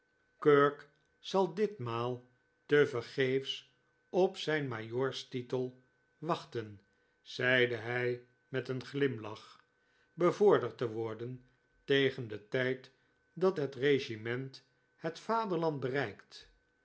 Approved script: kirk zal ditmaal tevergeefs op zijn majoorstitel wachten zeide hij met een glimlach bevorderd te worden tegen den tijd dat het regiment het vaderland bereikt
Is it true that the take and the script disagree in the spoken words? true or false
false